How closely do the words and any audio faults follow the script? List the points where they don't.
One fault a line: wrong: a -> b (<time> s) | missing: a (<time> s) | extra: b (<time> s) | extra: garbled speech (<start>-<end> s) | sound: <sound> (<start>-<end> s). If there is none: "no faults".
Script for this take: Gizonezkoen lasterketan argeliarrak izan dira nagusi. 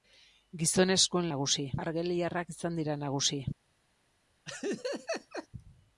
wrong: lasterketan -> nagusi (1.3 s)
sound: laugh (4.5-5.5 s)